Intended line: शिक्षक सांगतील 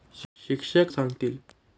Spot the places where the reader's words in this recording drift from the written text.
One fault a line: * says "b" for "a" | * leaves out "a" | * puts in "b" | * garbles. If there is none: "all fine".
all fine